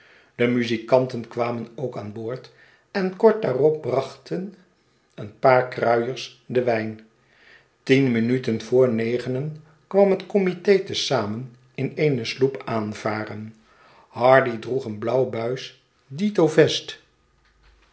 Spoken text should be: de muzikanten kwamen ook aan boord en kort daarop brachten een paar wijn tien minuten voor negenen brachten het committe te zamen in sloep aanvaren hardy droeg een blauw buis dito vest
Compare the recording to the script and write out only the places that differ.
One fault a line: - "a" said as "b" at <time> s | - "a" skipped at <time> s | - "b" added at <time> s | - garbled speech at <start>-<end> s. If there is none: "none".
- "kruiers den" added at 5.7 s
- "brachten" said as "kwam" at 9.9 s
- "eene" added at 12.0 s